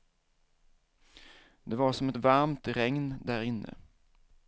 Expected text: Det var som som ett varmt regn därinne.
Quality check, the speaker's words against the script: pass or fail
fail